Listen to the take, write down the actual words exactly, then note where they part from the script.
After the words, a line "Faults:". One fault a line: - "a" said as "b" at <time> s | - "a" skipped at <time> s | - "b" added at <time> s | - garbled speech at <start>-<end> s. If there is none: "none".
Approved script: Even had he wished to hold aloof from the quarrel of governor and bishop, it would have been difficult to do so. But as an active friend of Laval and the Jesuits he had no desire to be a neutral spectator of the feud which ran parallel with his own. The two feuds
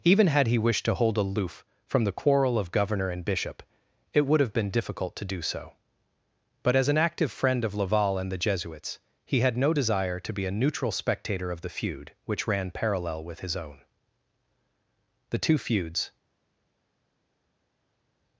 Even had he wished to hold aloof from the quarrel of governor and bishop, it would have been difficult to do so. But as an active friend of Laval and the Jesuits he had no desire to be a neutral spectator of the feud which ran parallel with his own. The two feuds
Faults:
none